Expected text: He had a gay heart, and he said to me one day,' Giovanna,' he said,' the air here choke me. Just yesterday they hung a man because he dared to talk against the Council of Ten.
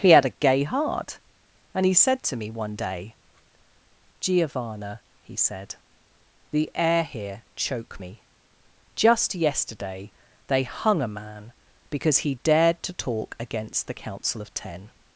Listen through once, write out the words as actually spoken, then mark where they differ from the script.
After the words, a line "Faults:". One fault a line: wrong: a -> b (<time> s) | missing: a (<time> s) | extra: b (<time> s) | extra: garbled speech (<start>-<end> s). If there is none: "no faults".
He had a gay heart, and he said to me one day,' Giovanna,' he said,' the air here choke me. Just yesterday they hung a man because he dared to talk against the Council of Ten.
Faults:
no faults